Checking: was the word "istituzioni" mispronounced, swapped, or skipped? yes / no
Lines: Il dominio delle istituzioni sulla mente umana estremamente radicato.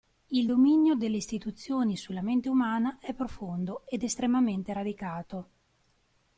no